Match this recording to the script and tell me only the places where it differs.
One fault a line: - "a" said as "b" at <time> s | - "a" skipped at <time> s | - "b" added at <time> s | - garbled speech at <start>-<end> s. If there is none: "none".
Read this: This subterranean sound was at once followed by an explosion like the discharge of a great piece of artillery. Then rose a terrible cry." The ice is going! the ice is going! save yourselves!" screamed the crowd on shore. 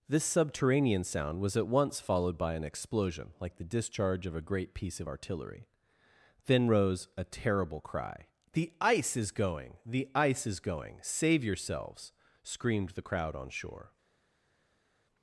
none